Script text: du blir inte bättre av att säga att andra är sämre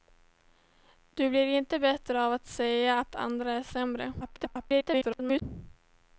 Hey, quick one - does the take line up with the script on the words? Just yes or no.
no